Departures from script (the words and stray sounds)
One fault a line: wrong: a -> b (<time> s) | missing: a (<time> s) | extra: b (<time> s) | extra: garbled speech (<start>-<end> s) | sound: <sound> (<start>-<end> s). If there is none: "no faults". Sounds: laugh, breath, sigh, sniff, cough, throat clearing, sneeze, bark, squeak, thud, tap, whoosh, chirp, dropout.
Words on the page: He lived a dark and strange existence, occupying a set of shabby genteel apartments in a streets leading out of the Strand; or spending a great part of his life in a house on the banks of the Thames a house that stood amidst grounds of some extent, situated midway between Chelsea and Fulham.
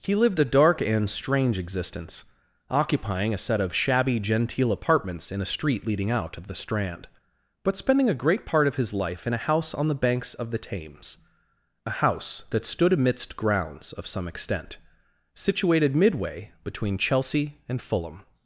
wrong: streets -> street (5.5 s)
wrong: or -> but (7.6 s)